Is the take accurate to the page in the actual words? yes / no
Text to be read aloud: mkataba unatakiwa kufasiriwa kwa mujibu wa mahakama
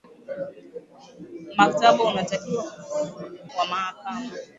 no